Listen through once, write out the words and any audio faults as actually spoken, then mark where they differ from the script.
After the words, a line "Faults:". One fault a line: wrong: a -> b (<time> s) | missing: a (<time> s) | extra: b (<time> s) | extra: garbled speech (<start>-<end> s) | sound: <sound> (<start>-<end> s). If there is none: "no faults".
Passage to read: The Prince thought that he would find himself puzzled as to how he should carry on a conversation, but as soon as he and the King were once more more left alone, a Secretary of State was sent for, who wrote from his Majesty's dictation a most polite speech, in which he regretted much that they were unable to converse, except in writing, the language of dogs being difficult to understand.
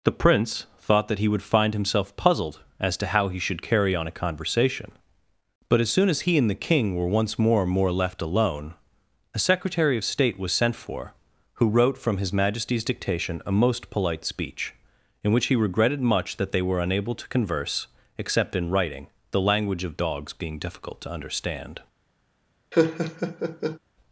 The Prince thought that he would find himself puzzled as to how he should carry on a conversation, but as soon as he and the King were once more more left alone, a Secretary of State was sent for, who wrote from his Majesty's dictation a most polite speech, in which he regretted much that they were unable to converse, except in writing, the language of dogs being difficult to understand.
Faults:
sound: laugh (22.7-23.8 s)